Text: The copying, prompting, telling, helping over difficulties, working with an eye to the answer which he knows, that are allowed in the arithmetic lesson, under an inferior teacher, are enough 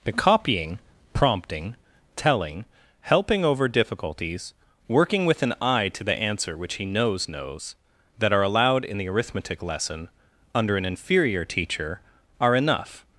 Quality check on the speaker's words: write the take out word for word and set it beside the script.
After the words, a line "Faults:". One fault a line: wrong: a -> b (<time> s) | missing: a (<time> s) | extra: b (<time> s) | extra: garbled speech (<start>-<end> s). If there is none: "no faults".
The copying, prompting, telling, helping over difficulties, working with an eye to the answer which he knows knows, that are allowed in the arithmetic lesson, under an inferior teacher, are enough
Faults:
extra: knows (7.3 s)